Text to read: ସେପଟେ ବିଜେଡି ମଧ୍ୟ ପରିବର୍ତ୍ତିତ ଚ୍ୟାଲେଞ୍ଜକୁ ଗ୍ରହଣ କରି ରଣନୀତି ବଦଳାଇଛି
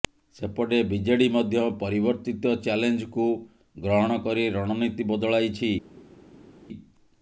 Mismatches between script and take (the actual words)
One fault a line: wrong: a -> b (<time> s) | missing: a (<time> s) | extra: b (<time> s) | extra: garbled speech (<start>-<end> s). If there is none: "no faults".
no faults